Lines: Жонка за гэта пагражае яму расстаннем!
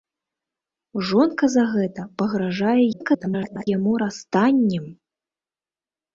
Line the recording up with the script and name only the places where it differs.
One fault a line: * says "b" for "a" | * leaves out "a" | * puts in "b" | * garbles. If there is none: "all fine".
* garbles